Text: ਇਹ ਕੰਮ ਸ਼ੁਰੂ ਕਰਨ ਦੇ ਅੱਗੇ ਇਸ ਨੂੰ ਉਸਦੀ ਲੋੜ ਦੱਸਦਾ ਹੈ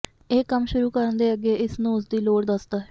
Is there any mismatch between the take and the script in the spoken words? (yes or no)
no